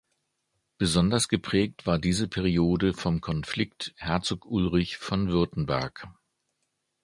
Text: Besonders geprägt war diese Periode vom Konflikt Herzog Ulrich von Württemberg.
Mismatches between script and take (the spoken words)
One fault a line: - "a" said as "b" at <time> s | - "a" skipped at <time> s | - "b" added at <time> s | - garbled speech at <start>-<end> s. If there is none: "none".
none